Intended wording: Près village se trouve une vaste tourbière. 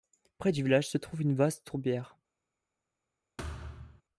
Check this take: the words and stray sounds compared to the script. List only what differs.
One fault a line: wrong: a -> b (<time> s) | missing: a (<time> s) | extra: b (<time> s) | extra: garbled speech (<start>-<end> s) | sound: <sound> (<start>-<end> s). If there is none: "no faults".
extra: du (0.5 s)
sound: thud (3.4-4.0 s)